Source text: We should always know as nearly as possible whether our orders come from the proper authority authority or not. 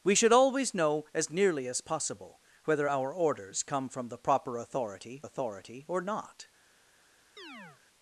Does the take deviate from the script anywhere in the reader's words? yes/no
no